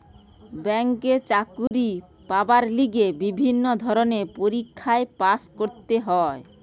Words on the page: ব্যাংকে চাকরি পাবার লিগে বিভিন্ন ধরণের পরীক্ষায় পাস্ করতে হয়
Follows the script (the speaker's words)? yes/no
yes